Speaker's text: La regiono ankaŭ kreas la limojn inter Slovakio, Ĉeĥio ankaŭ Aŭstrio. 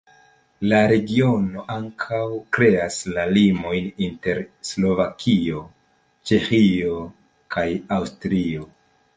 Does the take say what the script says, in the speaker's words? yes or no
no